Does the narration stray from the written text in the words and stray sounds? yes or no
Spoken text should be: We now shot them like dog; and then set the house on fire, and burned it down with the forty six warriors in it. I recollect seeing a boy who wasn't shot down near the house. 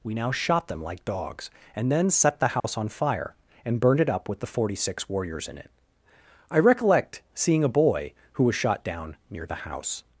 yes